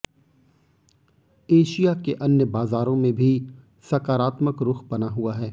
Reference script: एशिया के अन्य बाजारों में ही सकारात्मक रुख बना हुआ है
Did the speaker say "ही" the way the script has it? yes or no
no